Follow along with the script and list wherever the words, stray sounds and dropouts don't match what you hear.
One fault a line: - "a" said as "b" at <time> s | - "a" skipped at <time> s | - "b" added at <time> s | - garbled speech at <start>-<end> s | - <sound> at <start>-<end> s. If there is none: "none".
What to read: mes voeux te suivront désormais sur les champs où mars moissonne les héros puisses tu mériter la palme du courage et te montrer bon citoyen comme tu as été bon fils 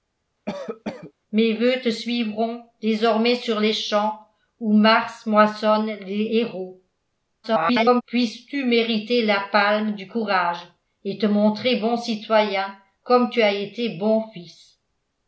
- cough at 0.5-1.1 s
- garbled speech at 7.4-8.0 s